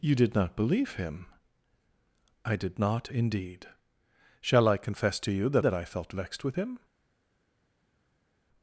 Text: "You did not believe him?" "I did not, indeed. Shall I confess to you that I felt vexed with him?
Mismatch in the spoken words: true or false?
true